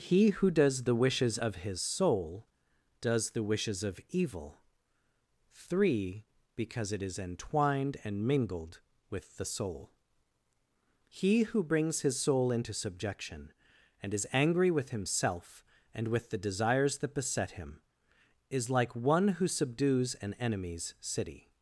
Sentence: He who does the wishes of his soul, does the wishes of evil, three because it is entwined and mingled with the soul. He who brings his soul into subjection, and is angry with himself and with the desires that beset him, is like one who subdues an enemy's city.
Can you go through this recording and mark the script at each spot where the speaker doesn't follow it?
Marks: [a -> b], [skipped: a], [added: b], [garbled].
He who does the wishes of his soul, does the wishes of evil, three because it is entwined and mingled with the soul. He who brings his soul into subjection, and is angry with himself and with the desires that beset him, is like one who subdues an enemy's city.